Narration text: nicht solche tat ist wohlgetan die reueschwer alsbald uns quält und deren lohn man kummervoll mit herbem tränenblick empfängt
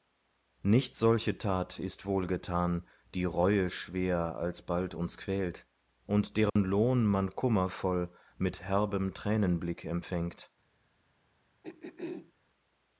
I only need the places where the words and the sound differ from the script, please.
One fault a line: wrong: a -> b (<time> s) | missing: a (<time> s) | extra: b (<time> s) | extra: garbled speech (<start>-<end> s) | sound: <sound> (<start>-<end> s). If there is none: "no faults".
sound: dropout (6.5-6.6 s)
sound: throat clearing (11.6-12.3 s)